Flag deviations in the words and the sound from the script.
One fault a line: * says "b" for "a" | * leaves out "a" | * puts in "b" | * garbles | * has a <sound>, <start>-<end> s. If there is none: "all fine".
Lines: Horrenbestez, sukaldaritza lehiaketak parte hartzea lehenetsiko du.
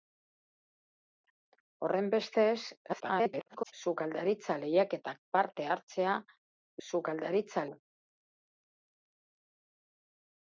* garbles
* says "sukaldaritza" for "lehenetsiko"